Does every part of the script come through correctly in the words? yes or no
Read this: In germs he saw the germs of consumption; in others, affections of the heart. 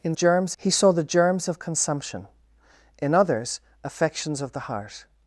yes